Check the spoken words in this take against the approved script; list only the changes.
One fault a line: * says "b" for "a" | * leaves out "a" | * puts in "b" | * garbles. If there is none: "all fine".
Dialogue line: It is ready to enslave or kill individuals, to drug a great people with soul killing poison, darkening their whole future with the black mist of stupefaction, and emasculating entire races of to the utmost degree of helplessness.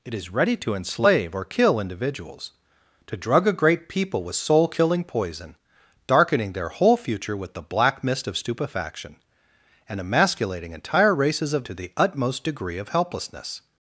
all fine